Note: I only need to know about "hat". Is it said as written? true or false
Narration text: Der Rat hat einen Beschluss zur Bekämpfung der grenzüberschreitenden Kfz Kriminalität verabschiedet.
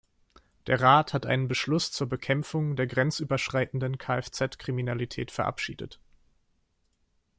true